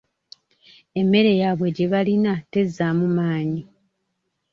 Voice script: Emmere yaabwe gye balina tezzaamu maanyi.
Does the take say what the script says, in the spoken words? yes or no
yes